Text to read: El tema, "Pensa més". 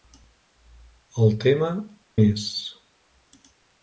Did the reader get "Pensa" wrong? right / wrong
wrong